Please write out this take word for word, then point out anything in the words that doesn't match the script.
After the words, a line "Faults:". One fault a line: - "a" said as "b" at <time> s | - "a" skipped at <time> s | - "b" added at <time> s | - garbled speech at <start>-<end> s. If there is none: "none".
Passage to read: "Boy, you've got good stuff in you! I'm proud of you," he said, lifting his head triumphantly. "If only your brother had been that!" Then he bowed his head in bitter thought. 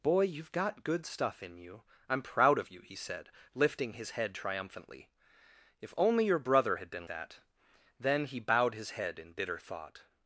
"Boy, you've got good stuff in you! I'm proud of you," he said, lifting his head triumphantly. "If only your brother had been that!" Then he bowed his head in bitter thought.
Faults:
none